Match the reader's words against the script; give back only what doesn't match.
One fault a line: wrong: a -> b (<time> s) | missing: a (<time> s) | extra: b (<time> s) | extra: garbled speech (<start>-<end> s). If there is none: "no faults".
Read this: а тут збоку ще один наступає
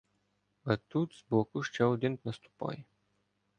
no faults